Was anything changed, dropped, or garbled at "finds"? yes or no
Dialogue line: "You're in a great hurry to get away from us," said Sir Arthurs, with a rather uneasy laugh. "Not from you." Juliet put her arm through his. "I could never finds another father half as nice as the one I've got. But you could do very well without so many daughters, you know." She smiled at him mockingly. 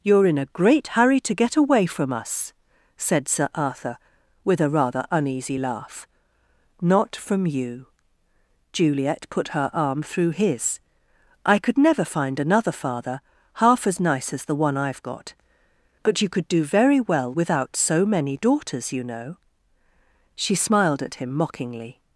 yes